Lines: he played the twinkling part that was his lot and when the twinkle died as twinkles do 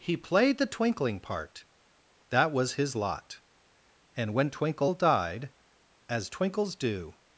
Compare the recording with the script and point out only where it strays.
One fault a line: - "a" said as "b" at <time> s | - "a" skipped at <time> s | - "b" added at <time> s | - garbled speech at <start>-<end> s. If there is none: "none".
- "the" skipped at 4.5 s